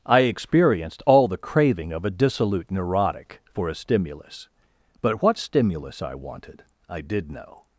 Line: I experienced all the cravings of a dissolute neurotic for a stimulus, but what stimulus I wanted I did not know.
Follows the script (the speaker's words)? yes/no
no